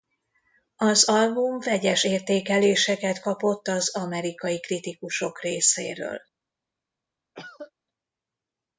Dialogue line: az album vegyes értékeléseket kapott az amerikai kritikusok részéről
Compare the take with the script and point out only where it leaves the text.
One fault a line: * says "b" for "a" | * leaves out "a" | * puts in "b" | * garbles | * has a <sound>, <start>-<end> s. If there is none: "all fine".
* has a cough, 7.3-7.7 s